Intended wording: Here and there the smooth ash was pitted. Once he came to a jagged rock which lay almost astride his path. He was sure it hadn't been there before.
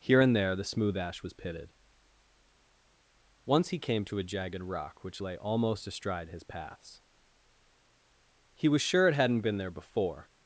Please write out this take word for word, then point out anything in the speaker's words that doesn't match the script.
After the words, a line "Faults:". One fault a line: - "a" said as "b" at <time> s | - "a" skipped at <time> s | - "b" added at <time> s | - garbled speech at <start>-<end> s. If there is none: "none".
Here and there the smooth ash was pitted. Once he came to a jagged rock which lay almost astride his paths. He was sure it hadn't been there before.
Faults:
- "path" said as "paths" at 6.4 s